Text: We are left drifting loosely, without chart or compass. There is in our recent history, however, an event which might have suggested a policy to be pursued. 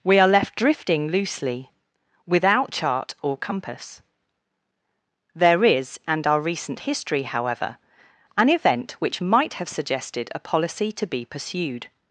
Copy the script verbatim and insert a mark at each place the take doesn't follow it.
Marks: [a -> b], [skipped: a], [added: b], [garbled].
We are left drifting loosely, without chart or compass. There is [in -> and] our recent history, however, an event which might have suggested a policy to be pursued.